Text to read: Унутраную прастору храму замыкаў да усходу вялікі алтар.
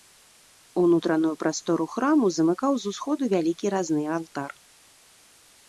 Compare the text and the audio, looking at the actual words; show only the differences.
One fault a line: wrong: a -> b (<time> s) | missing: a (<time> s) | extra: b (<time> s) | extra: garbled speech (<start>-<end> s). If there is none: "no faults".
wrong: да -> з (2.9 s)
extra: разны (3.8 s)